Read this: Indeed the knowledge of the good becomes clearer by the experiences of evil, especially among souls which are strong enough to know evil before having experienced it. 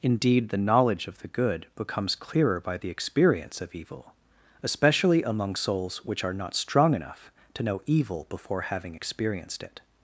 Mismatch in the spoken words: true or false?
true